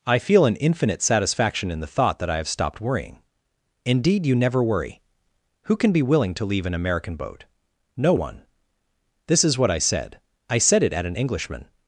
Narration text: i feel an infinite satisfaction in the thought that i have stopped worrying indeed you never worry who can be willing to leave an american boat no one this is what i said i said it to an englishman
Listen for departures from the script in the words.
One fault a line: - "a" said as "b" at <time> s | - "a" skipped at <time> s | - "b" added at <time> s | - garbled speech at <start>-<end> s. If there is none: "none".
- "to" said as "at" at 10.9 s